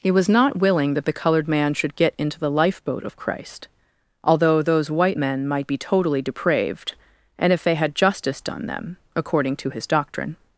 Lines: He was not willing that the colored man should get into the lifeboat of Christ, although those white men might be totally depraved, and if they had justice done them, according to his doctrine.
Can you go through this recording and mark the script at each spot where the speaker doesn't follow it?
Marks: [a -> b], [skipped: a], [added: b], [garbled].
He was not willing that the colored man should get into the lifeboat of Christ, although those white men might be totally depraved, and if they had justice done them, according to his doctrine.